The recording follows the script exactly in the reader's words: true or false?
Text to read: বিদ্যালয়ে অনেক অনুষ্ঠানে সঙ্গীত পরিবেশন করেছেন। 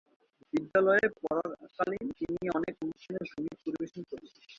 false